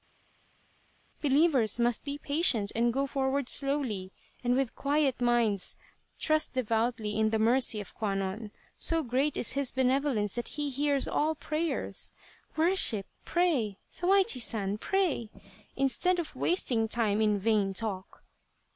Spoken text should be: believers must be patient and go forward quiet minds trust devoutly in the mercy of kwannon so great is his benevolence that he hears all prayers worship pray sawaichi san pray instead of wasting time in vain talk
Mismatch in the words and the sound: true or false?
true